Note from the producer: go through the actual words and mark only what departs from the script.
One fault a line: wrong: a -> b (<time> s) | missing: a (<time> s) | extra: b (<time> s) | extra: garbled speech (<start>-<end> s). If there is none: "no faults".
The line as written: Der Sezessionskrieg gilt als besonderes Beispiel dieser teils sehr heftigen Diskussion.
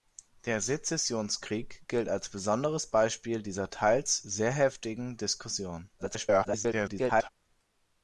extra: garbled speech (6.0-7.3 s)